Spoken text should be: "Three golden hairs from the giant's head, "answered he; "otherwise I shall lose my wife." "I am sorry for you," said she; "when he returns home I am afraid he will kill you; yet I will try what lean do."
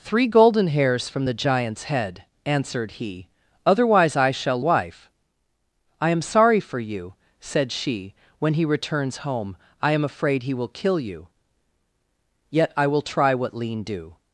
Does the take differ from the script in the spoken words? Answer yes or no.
yes